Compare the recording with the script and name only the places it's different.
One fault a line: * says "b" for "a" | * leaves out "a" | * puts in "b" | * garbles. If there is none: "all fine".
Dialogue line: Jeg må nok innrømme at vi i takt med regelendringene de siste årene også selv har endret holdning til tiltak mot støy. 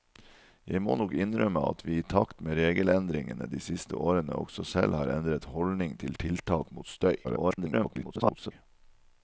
* garbles